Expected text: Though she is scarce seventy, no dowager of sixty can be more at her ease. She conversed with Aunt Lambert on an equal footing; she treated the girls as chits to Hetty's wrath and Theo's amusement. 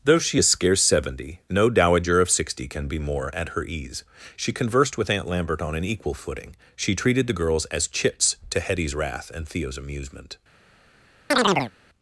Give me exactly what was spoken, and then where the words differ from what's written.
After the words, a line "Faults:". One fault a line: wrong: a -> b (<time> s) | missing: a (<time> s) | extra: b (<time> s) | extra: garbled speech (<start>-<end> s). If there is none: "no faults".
Though she is scarce seventy, no dowager of sixty can be more at her ease. She conversed with Aunt Lambert on an equal footing; she treated the girls as chits to Hetty's wrath and Theo's amusement.
Faults:
no faults